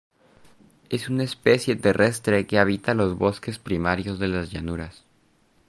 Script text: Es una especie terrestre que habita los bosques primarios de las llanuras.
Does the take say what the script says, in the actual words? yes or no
yes